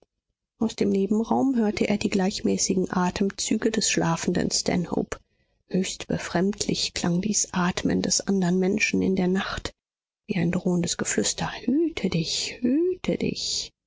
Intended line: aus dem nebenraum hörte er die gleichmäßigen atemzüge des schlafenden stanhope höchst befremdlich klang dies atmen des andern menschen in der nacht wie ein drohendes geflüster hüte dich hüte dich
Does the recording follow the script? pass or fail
pass